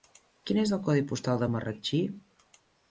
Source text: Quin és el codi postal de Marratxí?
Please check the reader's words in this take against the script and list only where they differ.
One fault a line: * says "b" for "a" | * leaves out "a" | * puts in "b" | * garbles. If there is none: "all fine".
all fine